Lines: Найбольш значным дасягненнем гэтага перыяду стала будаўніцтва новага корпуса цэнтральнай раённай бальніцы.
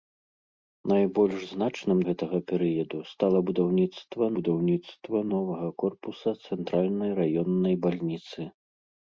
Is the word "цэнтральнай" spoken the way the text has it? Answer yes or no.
yes